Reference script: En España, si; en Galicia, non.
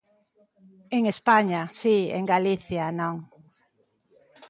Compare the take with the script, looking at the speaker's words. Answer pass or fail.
pass